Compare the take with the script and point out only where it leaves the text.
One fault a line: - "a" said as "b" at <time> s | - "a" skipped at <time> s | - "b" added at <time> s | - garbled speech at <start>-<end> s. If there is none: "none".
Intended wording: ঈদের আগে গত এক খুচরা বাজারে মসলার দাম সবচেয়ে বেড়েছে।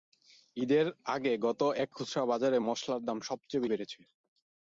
none